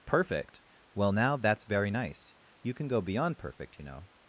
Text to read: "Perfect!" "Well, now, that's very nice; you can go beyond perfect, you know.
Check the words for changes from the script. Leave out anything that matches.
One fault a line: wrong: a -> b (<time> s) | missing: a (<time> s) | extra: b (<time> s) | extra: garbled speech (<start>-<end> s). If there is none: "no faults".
no faults